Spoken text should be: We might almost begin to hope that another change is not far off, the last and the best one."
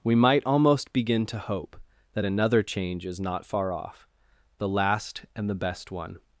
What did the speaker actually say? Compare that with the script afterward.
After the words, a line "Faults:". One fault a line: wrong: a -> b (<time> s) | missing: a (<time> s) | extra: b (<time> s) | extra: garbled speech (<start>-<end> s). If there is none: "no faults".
We might almost begin to hope that another change is not far off, the last and the best one."
Faults:
no faults